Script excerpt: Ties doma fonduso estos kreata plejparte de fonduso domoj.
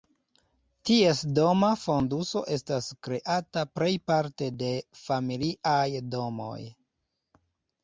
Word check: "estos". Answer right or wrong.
wrong